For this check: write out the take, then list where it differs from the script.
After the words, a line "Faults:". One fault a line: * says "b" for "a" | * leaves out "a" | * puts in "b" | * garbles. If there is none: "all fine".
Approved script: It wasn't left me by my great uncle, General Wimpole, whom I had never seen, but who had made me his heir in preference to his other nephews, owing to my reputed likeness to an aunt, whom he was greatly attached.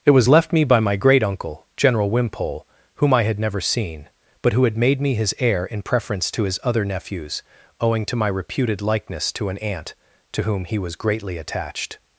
It was left me by my great uncle, General Wimpole, whom I had never seen, but who had made me his heir in preference to his other nephews, owing to my reputed likeness to an aunt, to whom he was greatly attached.
Faults:
* says "was" for "wasn't"
* puts in "to"